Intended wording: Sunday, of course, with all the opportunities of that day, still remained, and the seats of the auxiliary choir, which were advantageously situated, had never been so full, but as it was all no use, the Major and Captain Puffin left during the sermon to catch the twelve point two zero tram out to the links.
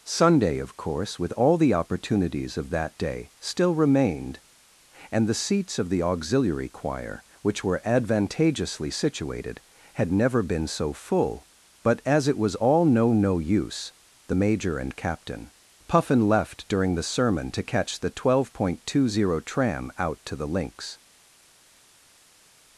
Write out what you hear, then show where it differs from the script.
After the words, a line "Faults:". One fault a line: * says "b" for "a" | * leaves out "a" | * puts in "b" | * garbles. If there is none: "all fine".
Sunday, of course, with all the opportunities of that day, still remained, and the seats of the auxiliary choir, which were advantageously situated, had never been so full, but as it was all no no use, the Major and Captain Puffin left during the sermon to catch the twelve point two zero tram out to the links.
Faults:
* puts in "no"